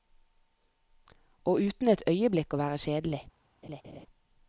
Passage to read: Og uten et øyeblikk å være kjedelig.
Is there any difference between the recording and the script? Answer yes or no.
no